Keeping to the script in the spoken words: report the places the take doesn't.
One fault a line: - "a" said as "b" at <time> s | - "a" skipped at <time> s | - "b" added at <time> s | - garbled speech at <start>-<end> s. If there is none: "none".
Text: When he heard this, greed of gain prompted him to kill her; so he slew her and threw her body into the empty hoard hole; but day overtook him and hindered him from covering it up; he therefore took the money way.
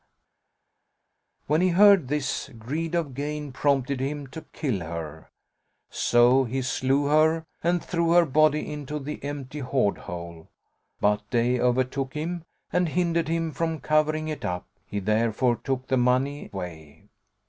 none